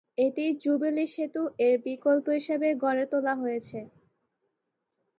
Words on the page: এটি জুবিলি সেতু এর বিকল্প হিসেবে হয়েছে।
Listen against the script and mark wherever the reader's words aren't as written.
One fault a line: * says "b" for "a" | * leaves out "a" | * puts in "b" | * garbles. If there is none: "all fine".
* puts in "গড়ে তোলা"